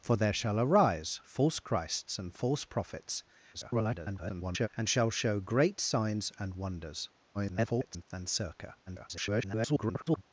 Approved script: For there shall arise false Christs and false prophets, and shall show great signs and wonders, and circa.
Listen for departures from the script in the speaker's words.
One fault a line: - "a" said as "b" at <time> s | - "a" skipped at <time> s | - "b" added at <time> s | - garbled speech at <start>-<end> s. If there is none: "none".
- garbled speech at 3.5-4.7 s
- garbled speech at 7.3-8.0 s
- garbled speech at 8.9-10.2 s